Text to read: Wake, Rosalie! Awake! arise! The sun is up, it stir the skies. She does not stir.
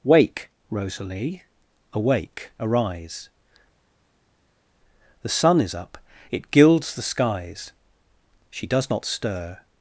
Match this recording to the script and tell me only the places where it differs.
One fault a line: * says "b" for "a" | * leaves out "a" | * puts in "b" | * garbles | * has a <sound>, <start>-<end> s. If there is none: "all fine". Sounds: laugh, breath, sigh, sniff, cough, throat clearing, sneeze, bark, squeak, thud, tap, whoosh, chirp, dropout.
* says "gilds" for "stir"